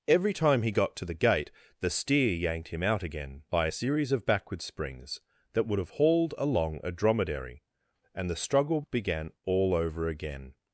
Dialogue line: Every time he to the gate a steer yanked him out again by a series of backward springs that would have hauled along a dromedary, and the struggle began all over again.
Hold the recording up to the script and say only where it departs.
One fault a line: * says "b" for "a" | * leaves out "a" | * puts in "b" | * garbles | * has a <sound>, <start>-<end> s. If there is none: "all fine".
* puts in "got"
* says "the" for "a"